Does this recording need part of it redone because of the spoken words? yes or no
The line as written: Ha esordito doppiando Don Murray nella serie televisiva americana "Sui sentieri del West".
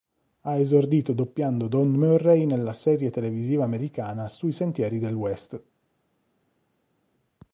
no